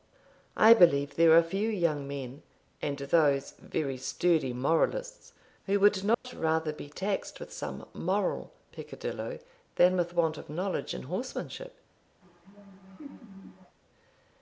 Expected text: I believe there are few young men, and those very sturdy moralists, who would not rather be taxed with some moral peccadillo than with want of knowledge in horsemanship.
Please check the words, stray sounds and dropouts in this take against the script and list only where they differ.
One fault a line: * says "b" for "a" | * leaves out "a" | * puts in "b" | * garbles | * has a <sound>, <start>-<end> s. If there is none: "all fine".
* has a dropout, 6.1-6.2 s
* has a laugh, 12.2-13.8 s